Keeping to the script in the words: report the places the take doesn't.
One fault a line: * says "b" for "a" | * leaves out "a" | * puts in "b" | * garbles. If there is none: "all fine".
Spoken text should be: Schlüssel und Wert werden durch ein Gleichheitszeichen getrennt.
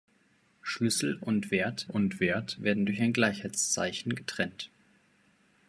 * puts in "und Wert"